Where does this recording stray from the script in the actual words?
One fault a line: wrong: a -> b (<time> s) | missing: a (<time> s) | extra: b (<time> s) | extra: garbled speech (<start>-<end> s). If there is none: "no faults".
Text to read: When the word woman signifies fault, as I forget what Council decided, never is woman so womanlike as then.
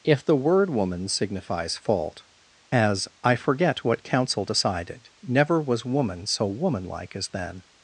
wrong: When -> If (0.0 s)
wrong: is -> was (5.6 s)